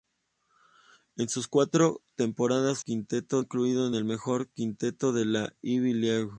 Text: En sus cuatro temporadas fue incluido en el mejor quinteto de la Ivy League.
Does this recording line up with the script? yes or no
no